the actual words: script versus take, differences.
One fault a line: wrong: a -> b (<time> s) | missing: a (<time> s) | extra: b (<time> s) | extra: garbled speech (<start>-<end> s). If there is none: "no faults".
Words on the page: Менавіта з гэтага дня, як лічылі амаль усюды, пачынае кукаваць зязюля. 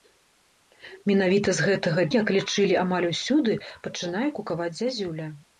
missing: дня (2.1 s)